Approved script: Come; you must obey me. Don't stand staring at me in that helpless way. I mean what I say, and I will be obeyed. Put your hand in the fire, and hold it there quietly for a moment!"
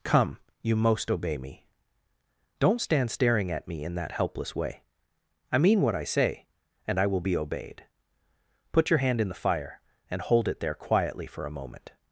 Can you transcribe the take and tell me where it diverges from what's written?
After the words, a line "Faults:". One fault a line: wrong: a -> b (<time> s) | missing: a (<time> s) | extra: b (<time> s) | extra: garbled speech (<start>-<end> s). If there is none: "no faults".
Come; you most obey me. Don't stand staring at me in that helpless way. I mean what I say, and I will be obeyed. Put your hand in the fire, and hold it there quietly for a moment!"
Faults:
wrong: must -> most (0.8 s)